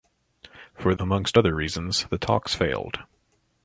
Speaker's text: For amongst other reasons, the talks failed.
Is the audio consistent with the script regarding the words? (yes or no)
yes